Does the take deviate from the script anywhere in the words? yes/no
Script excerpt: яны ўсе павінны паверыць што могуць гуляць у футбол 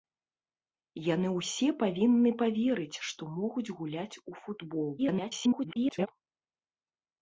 yes